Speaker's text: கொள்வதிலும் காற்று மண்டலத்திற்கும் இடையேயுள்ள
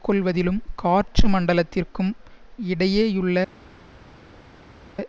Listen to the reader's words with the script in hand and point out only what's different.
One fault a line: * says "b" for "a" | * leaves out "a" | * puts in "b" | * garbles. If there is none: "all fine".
all fine